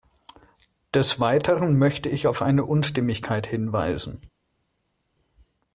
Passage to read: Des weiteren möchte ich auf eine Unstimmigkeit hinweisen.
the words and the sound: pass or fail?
pass